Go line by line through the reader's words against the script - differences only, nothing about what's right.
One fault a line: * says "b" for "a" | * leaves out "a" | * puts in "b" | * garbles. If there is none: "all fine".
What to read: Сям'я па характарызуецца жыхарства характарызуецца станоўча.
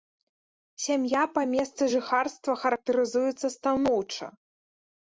* says "месцы" for "характарызуецца"